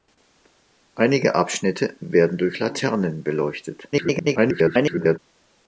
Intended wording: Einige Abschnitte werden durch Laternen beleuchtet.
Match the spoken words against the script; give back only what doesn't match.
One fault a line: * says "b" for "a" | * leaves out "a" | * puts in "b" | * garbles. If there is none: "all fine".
* garbles